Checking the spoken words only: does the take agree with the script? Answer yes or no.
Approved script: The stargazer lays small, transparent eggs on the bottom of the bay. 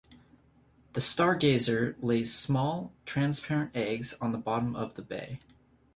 yes